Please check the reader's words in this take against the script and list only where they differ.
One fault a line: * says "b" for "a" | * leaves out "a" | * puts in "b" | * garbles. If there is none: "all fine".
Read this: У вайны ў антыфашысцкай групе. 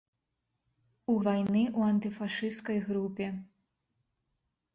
all fine